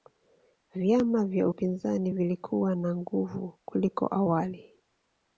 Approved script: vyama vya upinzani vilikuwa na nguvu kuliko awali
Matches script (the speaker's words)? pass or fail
pass